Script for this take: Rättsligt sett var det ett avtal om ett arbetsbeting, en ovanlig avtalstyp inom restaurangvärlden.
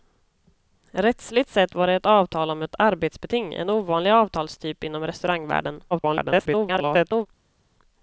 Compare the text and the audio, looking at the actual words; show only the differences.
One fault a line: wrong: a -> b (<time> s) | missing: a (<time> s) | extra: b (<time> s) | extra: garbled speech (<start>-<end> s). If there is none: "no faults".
extra: garbled speech (5.9-7.3 s)